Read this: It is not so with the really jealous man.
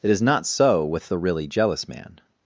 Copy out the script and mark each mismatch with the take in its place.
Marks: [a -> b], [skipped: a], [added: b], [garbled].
It is not so with the really jealous man.